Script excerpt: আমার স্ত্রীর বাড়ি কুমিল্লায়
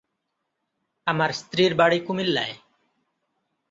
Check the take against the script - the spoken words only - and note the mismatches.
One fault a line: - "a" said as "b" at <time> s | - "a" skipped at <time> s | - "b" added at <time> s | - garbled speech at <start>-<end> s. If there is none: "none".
none